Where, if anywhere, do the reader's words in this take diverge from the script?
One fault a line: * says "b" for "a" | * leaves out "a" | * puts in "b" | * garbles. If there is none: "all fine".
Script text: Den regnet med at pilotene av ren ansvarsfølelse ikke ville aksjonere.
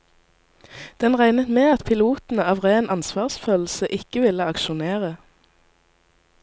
all fine